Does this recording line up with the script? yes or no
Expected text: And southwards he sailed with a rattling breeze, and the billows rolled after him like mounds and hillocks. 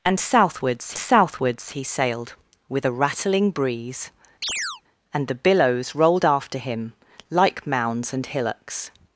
no